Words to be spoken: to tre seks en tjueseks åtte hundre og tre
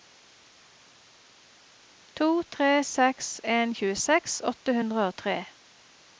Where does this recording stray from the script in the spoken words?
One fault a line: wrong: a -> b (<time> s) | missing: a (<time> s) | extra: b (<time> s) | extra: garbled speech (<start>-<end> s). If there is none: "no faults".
no faults